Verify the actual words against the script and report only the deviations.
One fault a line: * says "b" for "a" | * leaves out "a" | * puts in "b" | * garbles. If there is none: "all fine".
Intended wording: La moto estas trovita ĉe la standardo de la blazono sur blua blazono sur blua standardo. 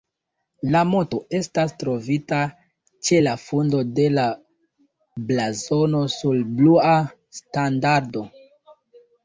* says "fundo" for "standardo"
* leaves out "blazono sur blua"